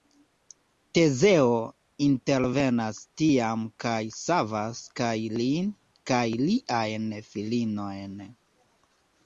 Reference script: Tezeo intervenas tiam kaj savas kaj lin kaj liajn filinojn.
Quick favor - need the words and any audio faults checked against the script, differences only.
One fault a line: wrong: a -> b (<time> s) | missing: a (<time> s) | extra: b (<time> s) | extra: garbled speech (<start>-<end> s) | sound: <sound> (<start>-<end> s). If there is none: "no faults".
no faults